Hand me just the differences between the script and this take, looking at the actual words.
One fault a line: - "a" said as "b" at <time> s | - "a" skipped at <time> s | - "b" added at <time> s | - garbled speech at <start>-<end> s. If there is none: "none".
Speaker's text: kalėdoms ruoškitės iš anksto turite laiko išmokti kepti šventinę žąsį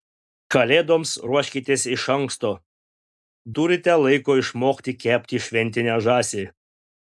none